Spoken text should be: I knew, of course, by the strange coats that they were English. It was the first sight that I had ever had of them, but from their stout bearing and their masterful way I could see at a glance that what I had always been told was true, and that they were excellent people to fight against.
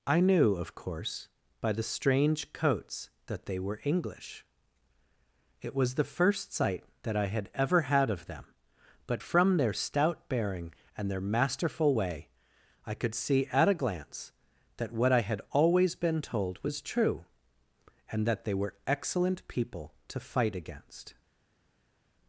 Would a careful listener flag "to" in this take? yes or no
no